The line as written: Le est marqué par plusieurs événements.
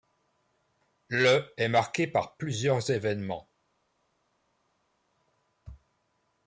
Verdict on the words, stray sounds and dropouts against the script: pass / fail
pass